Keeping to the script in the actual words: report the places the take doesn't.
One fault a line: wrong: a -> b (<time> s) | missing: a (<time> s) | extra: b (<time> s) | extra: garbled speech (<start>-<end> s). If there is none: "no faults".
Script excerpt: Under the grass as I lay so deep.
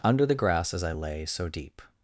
no faults